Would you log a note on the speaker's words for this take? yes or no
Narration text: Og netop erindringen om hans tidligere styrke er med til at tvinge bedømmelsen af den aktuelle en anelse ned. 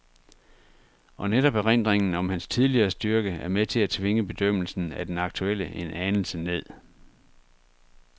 no